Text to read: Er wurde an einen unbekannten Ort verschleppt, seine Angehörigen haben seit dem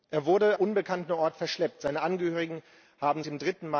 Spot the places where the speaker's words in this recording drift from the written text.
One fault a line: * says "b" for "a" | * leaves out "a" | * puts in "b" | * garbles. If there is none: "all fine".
* leaves out "an einen"
* leaves out "seit"